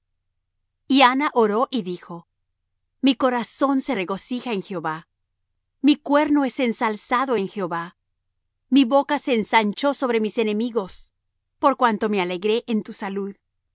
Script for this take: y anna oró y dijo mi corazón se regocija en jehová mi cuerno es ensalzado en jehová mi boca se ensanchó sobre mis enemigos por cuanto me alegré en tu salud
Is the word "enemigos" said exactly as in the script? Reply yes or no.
yes